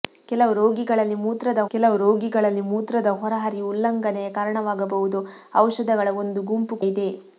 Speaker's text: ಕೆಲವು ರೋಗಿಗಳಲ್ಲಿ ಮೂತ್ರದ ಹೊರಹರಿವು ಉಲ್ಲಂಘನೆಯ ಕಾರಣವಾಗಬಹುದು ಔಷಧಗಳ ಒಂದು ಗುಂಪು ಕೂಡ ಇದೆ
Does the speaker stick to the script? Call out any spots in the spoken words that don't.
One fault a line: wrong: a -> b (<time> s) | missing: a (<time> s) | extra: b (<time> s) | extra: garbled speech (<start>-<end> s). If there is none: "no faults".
extra: ಕೆಲವು ರೋಗಿಗಳಲ್ಲಿ ಮೂತ್ರದ (1.7 s)
missing: ಕೂಡ (6.8 s)